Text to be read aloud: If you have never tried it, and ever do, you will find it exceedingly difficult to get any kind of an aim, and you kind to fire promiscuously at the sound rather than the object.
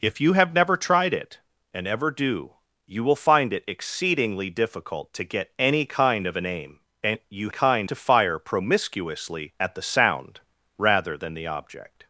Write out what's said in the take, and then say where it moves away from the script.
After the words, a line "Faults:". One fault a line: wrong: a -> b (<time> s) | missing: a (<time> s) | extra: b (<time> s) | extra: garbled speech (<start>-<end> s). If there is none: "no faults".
If you have never tried it, and ever do, you will find it exceedingly difficult to get any kind of an aim, and you kind to fire promiscuously at the sound rather than the object.
Faults:
no faults